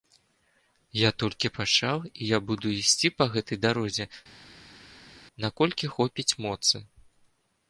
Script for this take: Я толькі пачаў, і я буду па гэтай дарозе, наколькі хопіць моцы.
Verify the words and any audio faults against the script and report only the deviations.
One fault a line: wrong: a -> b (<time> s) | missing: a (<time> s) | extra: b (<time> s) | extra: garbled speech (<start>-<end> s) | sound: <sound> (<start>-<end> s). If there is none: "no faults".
extra: ісці (2.8 s)